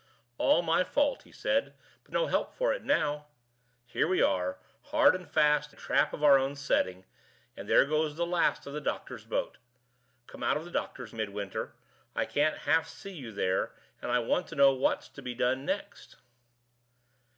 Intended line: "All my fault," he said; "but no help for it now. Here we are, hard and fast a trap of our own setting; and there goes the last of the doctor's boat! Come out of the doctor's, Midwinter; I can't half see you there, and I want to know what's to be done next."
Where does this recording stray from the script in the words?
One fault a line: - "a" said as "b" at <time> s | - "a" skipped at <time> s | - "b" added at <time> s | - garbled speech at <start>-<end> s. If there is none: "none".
none